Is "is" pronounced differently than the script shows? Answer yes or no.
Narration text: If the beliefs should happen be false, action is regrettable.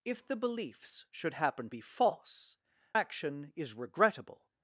no